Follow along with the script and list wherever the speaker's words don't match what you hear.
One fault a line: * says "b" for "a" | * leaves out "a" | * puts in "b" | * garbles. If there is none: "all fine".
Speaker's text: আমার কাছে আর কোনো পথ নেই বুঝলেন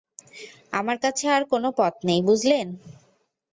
all fine